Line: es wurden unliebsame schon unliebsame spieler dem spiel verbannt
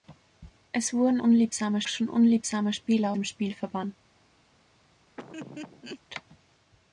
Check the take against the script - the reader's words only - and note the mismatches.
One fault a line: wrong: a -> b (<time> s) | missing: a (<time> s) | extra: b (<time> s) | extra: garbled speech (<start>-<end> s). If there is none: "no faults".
no faults